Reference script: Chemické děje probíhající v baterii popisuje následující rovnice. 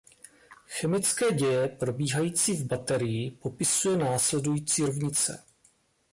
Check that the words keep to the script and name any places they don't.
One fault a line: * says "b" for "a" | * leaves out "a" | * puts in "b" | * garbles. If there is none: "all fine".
all fine